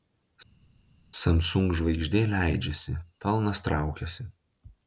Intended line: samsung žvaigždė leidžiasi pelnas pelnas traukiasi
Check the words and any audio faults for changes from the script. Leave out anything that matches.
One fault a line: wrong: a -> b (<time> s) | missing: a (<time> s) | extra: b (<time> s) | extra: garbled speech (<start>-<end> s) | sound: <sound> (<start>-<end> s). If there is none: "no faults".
missing: pelnas (3.6 s)